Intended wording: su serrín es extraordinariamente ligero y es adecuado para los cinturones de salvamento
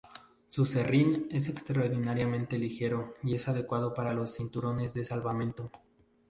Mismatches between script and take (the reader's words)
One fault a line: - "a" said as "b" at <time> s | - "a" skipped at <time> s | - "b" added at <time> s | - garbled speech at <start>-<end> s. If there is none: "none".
none